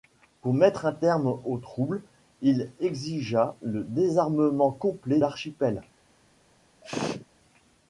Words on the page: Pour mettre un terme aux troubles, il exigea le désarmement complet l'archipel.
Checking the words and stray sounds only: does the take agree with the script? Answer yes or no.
no